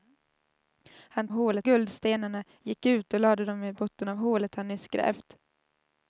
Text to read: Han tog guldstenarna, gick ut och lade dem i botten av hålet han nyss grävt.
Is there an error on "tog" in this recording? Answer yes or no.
yes